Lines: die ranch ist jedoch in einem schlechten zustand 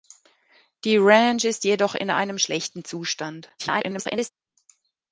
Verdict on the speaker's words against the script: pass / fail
fail